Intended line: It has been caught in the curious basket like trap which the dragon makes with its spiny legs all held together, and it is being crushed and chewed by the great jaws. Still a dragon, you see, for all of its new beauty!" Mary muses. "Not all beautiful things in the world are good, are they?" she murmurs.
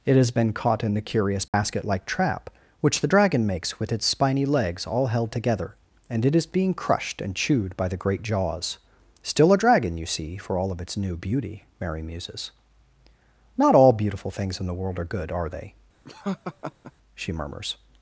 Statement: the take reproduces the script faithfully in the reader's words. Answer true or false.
true